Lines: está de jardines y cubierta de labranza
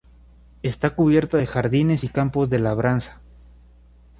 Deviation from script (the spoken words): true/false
true